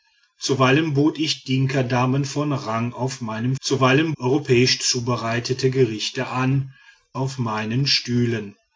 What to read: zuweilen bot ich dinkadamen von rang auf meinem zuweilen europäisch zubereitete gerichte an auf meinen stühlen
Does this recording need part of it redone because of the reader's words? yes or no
no